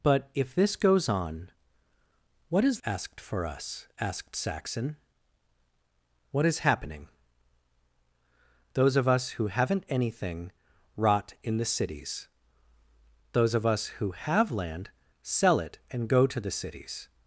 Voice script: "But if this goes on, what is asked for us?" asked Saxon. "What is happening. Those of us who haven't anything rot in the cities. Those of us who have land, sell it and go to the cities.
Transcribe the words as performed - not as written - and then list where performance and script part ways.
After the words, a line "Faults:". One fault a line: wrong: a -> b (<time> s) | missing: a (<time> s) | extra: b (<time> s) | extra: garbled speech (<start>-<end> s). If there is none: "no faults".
"But if this goes on, what is asked for us?" asked Saxon. "What is happening. Those of us who haven't anything rot in the cities. Those of us who have land, sell it and go to the cities.
Faults:
no faults